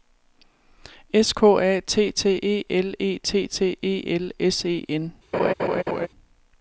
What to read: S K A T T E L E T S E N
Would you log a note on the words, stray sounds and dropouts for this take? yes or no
yes